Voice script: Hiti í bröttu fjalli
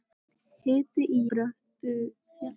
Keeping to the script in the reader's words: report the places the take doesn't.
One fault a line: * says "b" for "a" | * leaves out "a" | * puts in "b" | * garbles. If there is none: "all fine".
all fine